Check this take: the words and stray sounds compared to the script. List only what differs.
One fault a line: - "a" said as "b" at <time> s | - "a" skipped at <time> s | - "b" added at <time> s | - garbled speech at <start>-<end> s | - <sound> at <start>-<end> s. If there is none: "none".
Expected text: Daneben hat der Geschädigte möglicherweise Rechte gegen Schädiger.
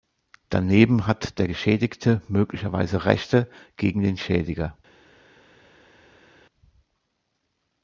- "den" added at 4.0 s